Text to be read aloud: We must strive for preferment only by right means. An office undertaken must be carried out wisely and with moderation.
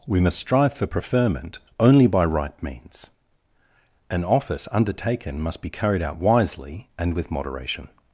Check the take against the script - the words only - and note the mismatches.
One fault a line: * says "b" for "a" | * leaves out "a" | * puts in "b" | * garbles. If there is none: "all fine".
all fine